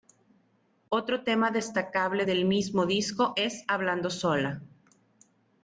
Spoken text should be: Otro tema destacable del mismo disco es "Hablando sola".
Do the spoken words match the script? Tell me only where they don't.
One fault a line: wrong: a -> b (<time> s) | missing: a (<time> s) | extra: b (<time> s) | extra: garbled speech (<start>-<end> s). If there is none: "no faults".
no faults